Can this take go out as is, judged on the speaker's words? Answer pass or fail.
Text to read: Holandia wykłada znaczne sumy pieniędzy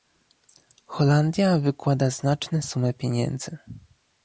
pass